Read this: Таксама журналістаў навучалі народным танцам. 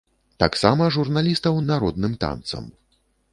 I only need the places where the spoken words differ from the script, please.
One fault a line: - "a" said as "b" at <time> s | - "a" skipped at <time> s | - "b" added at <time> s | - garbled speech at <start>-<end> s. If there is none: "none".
- "навучалі" skipped at 1.6 s